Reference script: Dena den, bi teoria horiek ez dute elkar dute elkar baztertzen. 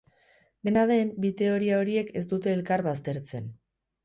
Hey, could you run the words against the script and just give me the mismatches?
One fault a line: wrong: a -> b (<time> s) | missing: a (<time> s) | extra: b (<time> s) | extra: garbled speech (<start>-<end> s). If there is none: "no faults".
missing: dute elkar (2.9 s)